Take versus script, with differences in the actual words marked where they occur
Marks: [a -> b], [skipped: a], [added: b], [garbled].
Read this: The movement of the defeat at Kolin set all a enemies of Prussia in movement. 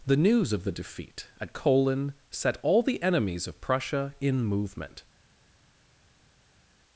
The [movement -> news] of the defeat at Kolin set all [a -> the] enemies of Prussia in movement.